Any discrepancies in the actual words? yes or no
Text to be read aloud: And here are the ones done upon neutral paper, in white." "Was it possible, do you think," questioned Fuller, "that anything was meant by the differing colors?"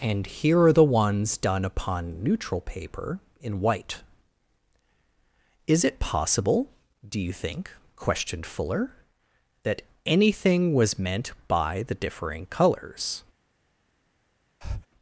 yes